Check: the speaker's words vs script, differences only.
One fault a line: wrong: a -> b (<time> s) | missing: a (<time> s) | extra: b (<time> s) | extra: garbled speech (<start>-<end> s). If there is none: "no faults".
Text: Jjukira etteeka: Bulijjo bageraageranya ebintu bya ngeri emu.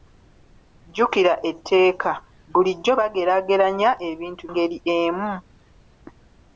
missing: bya (4.4 s)